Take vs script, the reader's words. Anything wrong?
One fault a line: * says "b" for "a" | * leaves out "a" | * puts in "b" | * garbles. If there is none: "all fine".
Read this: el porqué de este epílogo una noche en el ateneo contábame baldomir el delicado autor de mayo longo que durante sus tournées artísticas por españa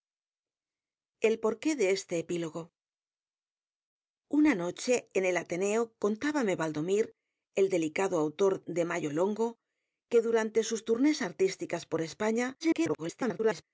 * garbles